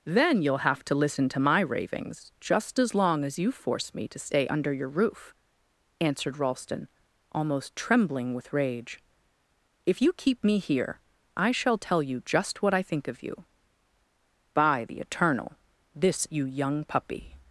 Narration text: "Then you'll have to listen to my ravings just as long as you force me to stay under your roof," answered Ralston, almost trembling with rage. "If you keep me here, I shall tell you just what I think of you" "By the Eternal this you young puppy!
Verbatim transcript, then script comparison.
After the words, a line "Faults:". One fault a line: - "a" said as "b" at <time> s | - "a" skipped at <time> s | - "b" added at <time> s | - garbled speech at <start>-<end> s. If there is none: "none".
"Then you'll have to listen to my ravings just as long as you force me to stay under your roof," answered Ralston, almost trembling with rage. "If you keep me here, I shall tell you just what I think of you" "By the Eternal this you young puppy!
Faults:
none